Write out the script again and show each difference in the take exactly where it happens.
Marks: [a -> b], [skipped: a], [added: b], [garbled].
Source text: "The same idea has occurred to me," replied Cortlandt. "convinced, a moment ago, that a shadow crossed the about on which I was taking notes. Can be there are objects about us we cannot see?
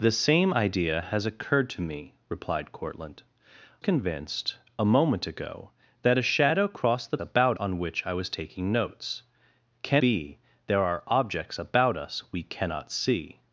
"The same idea has occurred to me," replied Cortlandt. "convinced, a moment ago, that a shadow crossed the about on which I was taking notes. Can be there are objects about us we cannot see?